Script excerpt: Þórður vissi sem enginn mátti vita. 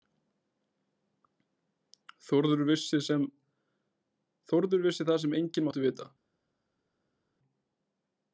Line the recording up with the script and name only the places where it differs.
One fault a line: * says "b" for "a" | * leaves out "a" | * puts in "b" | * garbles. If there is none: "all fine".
* puts in "það"